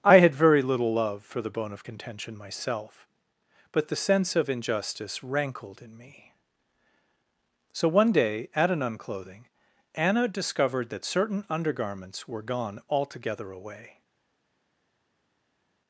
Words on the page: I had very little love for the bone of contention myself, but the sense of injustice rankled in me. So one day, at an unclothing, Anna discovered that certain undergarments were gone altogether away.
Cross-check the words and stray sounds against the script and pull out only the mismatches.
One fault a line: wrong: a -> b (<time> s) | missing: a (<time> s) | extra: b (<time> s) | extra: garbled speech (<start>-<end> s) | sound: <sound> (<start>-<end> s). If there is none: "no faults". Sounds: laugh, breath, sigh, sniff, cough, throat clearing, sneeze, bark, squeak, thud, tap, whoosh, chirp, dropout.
no faults